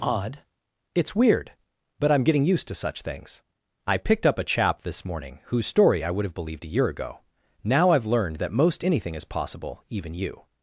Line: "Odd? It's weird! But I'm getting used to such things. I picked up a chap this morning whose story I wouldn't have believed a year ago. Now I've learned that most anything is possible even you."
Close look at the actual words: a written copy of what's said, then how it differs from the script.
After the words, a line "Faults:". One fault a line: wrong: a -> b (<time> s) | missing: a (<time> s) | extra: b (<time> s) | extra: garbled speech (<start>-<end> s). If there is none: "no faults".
"Odd? It's weird! But I'm getting used to such things. I picked up a chap this morning whose story I would have believed a year ago. Now I've learned that most anything is possible even you."
Faults:
wrong: wouldn't -> would (6.1 s)